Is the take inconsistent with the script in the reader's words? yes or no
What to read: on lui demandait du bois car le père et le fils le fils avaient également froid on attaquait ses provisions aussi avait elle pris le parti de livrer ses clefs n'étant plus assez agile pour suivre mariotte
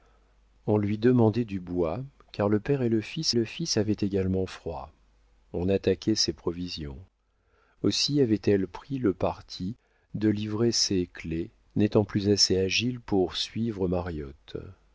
no